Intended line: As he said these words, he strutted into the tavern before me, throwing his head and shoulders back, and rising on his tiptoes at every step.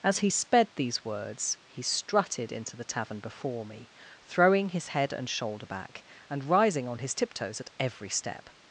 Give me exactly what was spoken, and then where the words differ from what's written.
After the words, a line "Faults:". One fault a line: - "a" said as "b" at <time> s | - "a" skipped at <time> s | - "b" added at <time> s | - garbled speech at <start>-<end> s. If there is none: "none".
As he sped these words, he strutted into the tavern before me, throwing his head and shoulder back, and rising on his tiptoes at every step.
Faults:
- "said" said as "sped" at 0.3 s
- "shoulders" said as "shoulder" at 5.3 s